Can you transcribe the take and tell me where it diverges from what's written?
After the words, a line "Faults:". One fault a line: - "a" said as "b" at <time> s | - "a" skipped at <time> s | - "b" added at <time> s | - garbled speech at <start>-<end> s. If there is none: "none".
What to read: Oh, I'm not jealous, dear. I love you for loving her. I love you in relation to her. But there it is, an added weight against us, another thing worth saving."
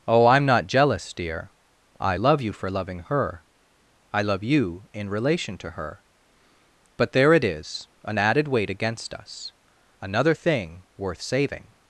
Oh, I'm not jealous, dear. I love you for loving her. I love you in relation to her. But there it is, an added weight against us, another thing worth saving."
Faults:
none